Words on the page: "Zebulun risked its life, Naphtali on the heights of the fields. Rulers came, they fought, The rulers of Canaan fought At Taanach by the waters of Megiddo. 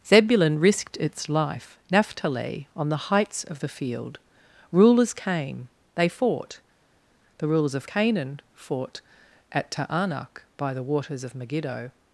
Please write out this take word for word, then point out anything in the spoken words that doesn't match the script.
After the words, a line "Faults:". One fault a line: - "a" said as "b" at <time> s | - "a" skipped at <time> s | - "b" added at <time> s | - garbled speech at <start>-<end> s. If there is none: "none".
"Zebulun risked its life, Naphtali on the heights of the field. Rulers came, they fought, The rulers of Canaan fought At Taanach by the waters of Megiddo.
Faults:
- "fields" said as "field" at 3.7 s